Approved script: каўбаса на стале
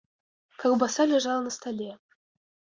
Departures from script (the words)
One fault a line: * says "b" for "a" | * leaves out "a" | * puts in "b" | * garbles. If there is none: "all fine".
* puts in "ляжала"